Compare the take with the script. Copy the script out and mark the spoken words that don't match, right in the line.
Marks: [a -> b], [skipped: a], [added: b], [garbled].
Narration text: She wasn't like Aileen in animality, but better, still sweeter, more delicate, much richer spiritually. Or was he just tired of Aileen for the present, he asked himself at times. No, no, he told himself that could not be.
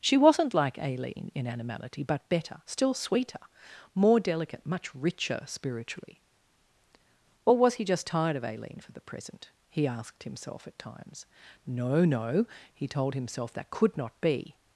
She wasn't like Aileen in animality, but better, still sweeter, more delicate, much richer spiritually. Or was he just tired of Aileen for the present, he asked himself at times. No, no, he told himself that could not be.